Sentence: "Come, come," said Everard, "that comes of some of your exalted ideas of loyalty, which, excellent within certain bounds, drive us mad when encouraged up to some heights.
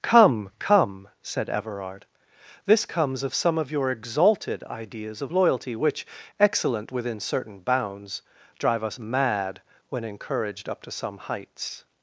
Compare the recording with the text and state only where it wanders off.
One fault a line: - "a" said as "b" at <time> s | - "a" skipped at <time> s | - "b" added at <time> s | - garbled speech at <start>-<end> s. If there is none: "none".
- "that" said as "this" at 2.6 s